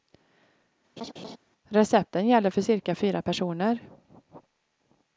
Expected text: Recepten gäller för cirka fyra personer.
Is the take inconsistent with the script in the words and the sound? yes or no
yes